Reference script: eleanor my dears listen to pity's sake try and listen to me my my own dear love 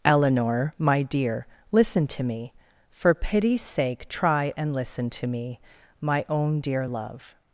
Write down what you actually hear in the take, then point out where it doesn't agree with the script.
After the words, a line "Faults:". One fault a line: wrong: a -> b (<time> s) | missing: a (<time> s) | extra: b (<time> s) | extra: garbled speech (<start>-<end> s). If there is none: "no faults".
eleanor my dear listen to me for pity's sake try and listen to me my own dear love
Faults:
wrong: dears -> dear (1.0 s)
extra: me for (2.2 s)
missing: my (6.2 s)